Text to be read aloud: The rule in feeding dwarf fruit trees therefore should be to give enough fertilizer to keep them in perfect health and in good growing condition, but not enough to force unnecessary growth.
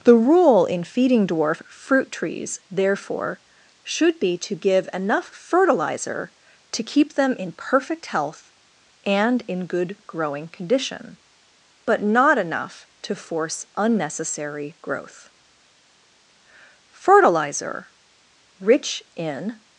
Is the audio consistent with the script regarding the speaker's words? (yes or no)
no